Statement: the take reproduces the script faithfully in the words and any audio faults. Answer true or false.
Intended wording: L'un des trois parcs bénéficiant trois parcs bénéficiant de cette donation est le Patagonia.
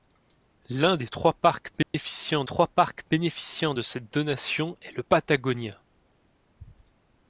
false